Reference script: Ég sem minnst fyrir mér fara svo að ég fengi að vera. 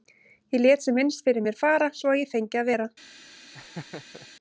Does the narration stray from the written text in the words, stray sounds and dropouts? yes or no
yes